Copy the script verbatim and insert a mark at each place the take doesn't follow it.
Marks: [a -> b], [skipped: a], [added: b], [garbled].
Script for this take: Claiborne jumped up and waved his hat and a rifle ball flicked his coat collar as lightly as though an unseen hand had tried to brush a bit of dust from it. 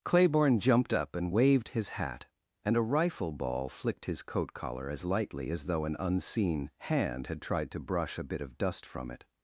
Claiborne jumped up and waved his hat and a rifle ball flicked his coat collar as lightly as though an unseen hand had tried to brush a bit of dust from it.